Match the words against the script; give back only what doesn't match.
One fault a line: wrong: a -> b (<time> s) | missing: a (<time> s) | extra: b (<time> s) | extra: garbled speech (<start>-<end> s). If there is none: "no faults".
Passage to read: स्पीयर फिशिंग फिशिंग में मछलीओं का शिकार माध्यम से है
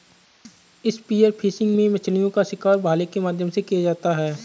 missing: फिशिंग (1.8 s)
extra: भाले के (2.8 s)
extra: किया जाता (3.6 s)